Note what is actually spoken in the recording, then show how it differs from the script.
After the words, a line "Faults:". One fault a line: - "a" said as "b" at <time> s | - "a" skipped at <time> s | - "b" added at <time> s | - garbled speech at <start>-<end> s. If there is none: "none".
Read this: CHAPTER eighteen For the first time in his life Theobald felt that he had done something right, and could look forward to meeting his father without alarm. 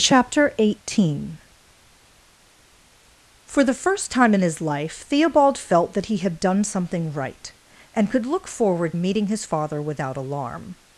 CHAPTER eighteen For the first time in his life Theobald felt that he had done something right, and could look forward meeting his father without alarm.
Faults:
- "to" skipped at 8.9 s